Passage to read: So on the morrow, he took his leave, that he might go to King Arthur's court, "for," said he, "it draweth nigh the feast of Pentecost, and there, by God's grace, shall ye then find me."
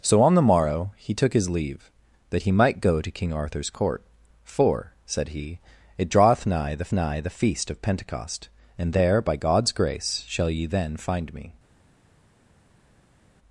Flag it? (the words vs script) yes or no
yes